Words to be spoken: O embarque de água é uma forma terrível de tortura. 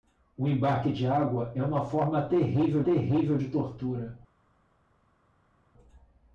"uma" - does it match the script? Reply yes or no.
yes